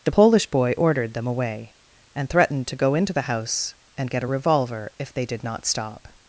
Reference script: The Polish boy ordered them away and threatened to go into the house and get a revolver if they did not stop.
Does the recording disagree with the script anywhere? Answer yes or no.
no